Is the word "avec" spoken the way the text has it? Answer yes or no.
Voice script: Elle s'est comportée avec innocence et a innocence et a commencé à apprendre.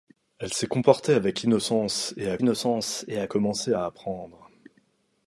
yes